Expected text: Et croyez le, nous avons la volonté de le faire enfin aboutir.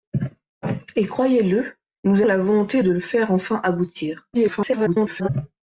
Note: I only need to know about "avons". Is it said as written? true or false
false